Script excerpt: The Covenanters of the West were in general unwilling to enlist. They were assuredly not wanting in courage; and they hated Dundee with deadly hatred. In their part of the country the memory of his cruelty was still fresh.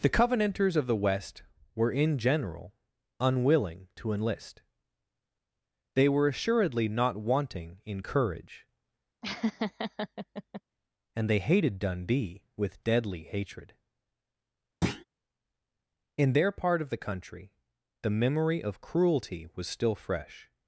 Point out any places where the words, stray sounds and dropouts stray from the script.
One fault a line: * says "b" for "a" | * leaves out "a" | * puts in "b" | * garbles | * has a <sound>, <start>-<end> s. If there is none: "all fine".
* has a laugh, 9.2-10.6 s
* has a thud, 14.8-15.0 s
* leaves out "his"